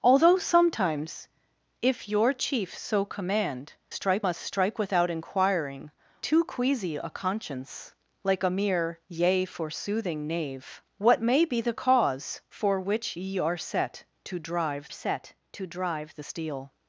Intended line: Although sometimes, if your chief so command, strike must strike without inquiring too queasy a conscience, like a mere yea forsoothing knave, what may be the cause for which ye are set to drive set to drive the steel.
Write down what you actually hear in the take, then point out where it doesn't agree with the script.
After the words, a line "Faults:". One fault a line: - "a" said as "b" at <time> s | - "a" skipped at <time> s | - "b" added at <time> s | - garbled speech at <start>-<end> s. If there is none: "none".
Although sometimes, if your chief so command, strike must strike without inquiring too queasy a conscience, like a mere yea forsoothing knave, what may be the cause for which ye are set to drive set to drive the steel.
Faults:
none